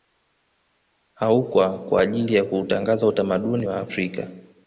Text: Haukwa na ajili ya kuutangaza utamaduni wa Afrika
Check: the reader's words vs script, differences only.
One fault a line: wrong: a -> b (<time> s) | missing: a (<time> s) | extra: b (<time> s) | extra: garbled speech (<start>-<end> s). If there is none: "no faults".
wrong: na -> kwa (1.8 s)